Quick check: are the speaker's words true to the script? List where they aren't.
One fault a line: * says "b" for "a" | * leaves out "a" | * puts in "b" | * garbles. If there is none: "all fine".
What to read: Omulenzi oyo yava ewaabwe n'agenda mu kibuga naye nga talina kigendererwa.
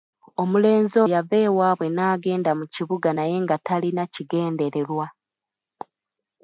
* leaves out "oyo"